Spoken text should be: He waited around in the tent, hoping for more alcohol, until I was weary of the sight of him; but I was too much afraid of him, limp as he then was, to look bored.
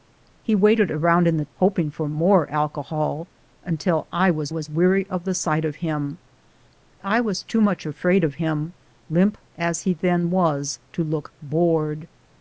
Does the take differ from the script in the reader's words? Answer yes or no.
yes